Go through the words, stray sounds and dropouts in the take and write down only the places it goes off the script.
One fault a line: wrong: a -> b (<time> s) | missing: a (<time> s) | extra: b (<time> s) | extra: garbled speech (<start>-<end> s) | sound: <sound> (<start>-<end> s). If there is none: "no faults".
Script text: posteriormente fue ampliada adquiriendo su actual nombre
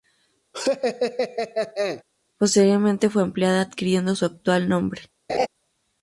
sound: laugh (0.5-2.0 s)
sound: laugh (5.3-5.5 s)